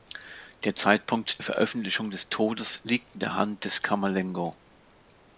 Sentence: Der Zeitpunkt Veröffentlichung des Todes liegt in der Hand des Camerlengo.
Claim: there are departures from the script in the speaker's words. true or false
false